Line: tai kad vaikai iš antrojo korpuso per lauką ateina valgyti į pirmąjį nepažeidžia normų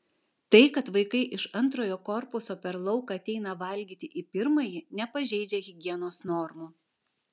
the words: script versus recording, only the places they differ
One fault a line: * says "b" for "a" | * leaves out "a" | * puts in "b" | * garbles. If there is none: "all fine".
* puts in "higienos"